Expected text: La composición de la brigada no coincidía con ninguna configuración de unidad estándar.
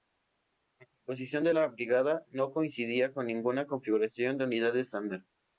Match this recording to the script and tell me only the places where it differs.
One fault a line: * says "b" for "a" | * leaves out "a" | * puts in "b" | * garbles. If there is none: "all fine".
all fine